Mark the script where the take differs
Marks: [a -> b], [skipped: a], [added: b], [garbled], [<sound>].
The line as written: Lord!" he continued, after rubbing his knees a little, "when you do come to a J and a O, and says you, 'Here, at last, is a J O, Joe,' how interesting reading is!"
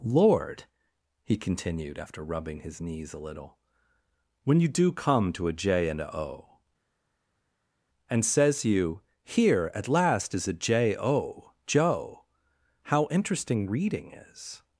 Lord!" he continued, after rubbing his knees a little, "when you do come to a J and a O, and says you, 'Here, at last, is a J O, Joe,' how interesting reading is!"